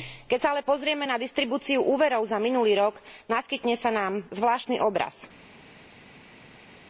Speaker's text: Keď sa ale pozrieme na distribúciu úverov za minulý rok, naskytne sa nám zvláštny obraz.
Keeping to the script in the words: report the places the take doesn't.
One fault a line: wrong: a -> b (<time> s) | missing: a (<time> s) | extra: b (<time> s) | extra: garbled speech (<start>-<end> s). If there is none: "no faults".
no faults